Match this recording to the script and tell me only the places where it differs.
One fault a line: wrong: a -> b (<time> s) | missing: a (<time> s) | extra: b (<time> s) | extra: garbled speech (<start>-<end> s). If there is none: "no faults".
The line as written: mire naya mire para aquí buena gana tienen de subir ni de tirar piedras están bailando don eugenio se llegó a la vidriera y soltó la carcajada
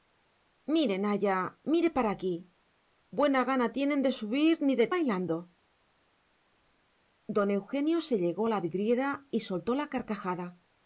missing: tirar piedras están (4.9 s)